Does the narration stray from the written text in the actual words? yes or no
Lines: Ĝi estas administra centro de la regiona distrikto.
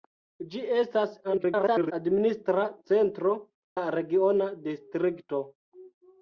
yes